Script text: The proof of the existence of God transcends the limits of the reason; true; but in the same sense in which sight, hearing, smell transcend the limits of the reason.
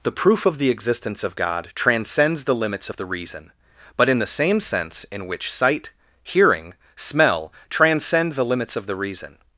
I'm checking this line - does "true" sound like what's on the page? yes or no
no